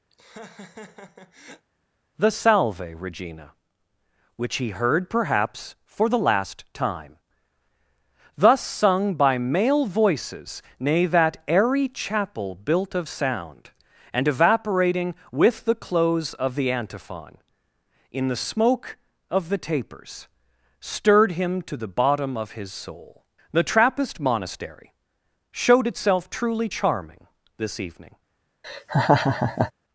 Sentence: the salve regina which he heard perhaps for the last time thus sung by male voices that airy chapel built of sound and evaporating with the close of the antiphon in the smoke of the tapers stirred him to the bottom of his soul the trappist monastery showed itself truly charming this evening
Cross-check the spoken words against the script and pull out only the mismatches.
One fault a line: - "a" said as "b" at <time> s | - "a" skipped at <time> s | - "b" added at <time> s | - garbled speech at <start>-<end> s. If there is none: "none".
- "nay" added at 10.8 s